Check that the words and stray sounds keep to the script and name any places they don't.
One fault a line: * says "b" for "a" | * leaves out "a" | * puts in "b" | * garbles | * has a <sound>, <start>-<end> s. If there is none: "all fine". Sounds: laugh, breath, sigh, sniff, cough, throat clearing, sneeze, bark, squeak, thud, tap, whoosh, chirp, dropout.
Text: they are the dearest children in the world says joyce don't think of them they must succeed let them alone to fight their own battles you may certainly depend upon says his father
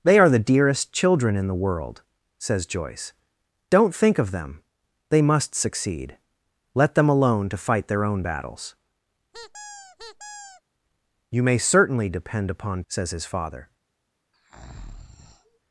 * has a squeak, 9.3-10.6 s
* has a breath, 14.3-15.6 s